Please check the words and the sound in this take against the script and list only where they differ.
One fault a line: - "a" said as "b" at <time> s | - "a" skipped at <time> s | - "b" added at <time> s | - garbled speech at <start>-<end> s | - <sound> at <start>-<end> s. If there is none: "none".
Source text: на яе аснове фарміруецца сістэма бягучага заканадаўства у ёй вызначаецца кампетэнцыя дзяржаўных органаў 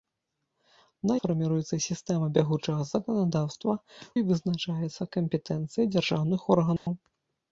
- "яе аснове" skipped at 1.2 s
- "у" skipped at 3.7 s
- dropout at 6.8-6.9 s